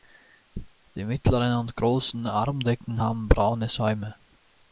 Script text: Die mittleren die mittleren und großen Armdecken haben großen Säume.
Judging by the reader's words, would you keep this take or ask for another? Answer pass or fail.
fail